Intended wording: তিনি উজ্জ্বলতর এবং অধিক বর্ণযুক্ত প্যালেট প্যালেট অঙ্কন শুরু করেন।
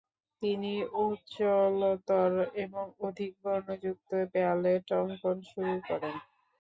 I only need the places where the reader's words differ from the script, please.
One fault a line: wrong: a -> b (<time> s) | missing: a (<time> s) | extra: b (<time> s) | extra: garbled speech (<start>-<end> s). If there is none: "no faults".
missing: প্যালেট (4.9 s)